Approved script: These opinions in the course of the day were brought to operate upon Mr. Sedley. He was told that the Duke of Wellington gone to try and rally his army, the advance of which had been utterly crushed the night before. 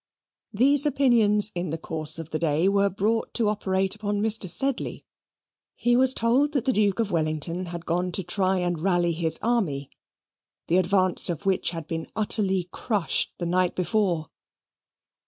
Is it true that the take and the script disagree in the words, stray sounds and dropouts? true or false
true